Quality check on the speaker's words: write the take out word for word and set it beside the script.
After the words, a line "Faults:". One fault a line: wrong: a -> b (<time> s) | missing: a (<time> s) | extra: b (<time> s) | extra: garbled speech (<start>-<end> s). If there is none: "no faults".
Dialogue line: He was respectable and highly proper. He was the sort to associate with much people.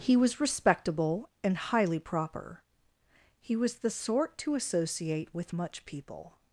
He was respectable and highly proper. He was the sort to associate with much people.
Faults:
no faults